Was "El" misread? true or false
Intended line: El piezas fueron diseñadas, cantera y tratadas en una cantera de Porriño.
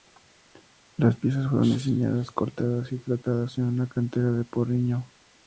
true